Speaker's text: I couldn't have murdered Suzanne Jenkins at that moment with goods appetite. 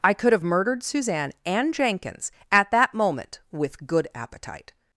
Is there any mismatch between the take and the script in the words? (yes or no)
yes